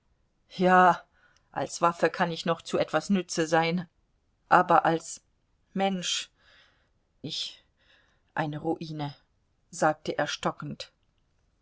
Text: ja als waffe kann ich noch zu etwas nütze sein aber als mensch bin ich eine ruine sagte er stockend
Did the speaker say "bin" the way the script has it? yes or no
no